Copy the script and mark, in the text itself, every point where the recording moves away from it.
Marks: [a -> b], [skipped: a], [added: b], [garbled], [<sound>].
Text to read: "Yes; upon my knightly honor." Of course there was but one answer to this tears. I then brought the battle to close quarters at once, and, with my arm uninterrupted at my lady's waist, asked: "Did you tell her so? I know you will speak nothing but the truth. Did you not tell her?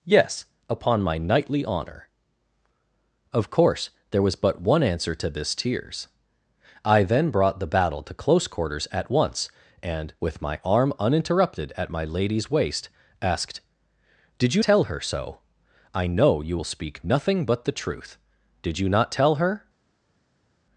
"Yes; upon my knightly honor." Of course there was but one answer to this tears. I then brought the battle to close quarters at once, and, with my arm uninterrupted at my lady's waist, asked: "Did you tell her so? I know you will speak nothing but the truth. Did you not tell her?